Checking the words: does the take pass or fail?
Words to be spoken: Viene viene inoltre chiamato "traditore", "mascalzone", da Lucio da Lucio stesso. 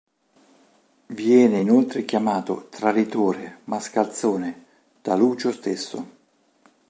fail